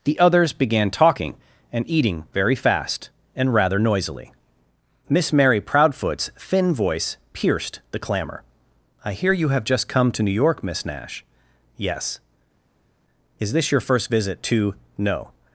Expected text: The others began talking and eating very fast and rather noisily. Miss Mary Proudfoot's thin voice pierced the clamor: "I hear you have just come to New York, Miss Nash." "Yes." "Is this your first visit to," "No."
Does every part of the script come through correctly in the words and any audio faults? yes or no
yes